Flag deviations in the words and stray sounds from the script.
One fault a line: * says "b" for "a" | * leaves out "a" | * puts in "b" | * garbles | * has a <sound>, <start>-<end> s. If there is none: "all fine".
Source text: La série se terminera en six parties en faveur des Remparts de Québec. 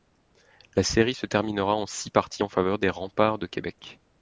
all fine